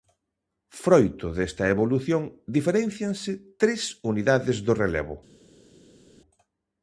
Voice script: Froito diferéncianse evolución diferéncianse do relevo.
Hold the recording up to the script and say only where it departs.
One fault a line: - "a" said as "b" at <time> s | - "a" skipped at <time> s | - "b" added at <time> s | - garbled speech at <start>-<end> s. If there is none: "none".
- "diferéncianse" said as "desta" at 1.4 s
- "tres unidades" added at 3.6 s